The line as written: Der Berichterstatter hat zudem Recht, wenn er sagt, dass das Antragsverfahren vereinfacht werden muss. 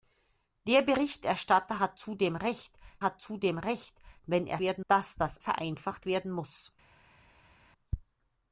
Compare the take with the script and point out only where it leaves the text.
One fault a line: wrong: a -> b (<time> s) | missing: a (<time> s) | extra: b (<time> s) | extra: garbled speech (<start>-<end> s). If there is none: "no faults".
extra: hat zudem Recht (3.0 s)
wrong: sagt -> werden (4.6 s)
missing: Antragsverfahren (5.4 s)